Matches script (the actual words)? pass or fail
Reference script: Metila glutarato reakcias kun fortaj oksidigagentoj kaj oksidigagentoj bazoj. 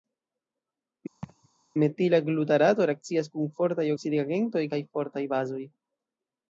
fail